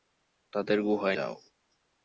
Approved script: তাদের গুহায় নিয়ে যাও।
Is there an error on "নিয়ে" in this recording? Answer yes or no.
yes